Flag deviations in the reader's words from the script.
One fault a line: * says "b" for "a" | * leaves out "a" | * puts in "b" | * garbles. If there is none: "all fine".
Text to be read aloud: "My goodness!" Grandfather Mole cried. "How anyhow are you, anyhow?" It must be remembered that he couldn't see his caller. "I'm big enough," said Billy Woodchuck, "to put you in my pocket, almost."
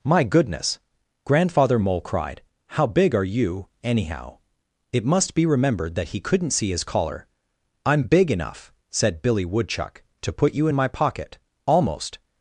* says "big" for "anyhow"